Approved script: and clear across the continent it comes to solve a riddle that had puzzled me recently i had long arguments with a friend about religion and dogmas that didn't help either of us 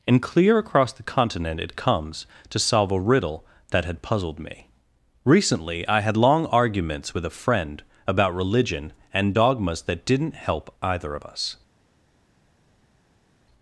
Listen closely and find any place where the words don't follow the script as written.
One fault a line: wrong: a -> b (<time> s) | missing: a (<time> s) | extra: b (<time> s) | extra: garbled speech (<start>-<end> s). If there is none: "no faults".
no faults